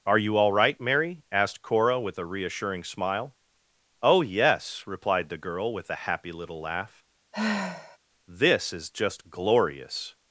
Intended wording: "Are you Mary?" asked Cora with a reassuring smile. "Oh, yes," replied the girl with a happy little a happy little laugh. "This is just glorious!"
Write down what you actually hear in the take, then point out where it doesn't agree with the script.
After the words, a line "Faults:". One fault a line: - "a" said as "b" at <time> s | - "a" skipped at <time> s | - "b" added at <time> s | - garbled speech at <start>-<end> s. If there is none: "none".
"Are you all right, Mary?" asked Cora with a reassuring smile. "Oh, yes," replied the girl with a happy little laugh. "This is just glorious!"
Faults:
- "all right" added at 0.3 s
- "a happy little" skipped at 6.6 s